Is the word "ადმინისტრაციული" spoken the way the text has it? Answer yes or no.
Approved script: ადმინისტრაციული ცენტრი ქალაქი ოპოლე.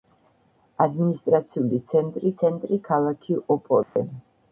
yes